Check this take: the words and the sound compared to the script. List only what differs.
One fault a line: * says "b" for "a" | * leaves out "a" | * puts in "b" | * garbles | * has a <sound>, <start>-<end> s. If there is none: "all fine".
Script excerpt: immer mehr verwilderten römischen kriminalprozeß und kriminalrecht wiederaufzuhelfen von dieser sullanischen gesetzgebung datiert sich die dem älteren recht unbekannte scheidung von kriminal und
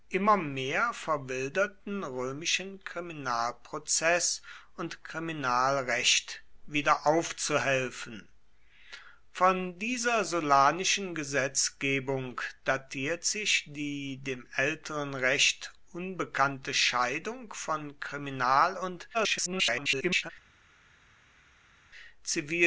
* garbles